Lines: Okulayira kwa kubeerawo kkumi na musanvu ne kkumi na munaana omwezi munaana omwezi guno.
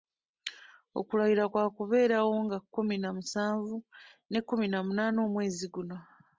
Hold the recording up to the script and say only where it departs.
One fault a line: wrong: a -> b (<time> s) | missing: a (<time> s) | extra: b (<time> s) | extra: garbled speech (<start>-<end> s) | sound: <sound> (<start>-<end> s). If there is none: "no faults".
extra: nga (2.5 s)
missing: munaana omwezi (5.7 s)